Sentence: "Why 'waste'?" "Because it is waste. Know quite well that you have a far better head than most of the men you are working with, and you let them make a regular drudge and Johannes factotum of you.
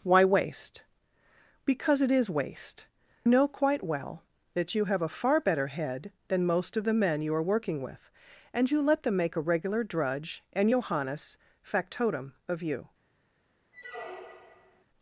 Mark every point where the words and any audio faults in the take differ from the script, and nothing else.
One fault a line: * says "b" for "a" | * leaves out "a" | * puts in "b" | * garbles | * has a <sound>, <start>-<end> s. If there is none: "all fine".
* has a squeak, 13.7-14.8 s